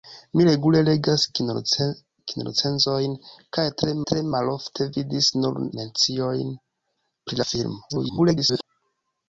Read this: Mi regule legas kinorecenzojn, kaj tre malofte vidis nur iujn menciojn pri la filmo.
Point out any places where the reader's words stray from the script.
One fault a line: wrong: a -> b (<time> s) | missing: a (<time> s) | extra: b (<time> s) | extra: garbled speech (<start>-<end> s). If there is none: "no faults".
extra: tre (4.1 s)
missing: iujn (5.6 s)
extra: garbled speech (7.9-8.6 s)